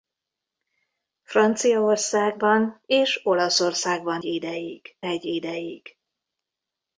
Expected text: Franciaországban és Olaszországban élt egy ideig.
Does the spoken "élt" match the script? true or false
false